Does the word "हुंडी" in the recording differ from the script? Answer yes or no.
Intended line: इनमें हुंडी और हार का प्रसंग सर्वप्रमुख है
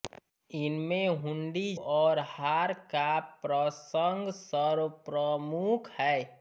no